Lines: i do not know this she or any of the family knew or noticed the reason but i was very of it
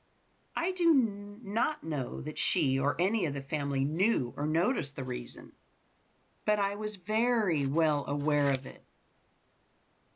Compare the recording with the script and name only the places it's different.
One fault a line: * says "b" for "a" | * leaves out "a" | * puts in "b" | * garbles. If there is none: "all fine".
* says "that" for "this"
* puts in "well aware"